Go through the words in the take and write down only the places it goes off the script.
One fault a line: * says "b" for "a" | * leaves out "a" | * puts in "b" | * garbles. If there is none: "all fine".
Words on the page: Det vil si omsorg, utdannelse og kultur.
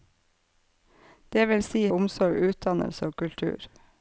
all fine